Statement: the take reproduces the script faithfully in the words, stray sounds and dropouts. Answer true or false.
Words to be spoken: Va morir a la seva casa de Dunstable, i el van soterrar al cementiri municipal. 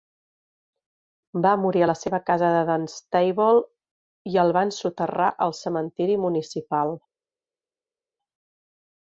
true